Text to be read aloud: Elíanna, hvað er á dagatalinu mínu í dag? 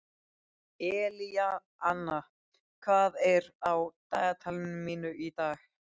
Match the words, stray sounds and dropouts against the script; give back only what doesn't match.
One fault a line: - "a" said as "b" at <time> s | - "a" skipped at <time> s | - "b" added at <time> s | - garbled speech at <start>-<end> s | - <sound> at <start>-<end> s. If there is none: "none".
none